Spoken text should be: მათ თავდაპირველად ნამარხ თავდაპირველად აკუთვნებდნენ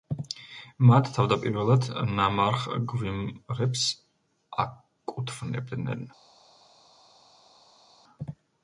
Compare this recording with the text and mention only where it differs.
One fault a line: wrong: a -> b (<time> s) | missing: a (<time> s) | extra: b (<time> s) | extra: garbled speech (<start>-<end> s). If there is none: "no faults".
wrong: თავდაპირველად -> გვიმრებს (2.9 s)